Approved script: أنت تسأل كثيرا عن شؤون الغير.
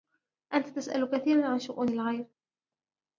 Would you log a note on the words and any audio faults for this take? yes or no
no